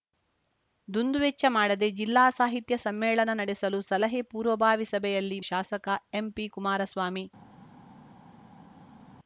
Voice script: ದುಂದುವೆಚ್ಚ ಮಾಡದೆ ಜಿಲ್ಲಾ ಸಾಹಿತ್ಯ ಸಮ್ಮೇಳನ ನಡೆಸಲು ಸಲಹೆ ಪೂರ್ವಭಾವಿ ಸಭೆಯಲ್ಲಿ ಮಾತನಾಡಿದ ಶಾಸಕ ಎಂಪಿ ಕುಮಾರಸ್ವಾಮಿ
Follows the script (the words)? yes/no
no